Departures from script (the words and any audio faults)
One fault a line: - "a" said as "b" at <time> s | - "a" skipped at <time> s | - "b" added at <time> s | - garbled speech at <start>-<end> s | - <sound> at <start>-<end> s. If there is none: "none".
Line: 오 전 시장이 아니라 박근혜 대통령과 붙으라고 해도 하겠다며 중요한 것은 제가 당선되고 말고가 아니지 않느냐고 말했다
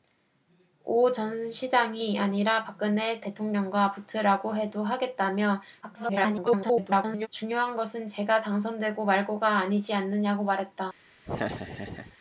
- garbled speech at 5.8-7.3 s
- laugh at 11.2-12.2 s